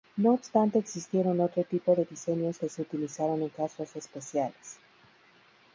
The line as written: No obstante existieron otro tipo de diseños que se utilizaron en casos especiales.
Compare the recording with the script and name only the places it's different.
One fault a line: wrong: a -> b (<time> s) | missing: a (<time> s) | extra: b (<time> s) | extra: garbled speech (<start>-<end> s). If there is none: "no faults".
no faults